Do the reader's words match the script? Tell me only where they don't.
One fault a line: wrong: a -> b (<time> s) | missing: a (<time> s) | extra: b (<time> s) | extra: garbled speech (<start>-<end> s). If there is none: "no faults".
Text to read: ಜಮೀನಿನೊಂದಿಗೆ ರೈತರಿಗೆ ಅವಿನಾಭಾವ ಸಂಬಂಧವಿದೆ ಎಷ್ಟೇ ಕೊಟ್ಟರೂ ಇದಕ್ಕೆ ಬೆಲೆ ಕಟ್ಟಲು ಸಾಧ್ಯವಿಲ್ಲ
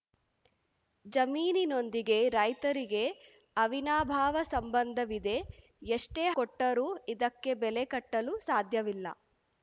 no faults